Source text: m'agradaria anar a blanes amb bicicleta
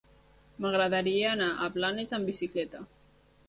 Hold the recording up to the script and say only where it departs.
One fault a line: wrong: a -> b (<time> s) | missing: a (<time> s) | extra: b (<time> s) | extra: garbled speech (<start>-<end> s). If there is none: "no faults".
no faults